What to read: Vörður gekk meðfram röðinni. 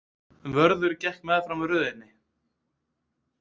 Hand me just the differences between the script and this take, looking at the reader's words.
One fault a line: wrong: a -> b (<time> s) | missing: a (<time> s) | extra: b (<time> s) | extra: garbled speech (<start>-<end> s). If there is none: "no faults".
no faults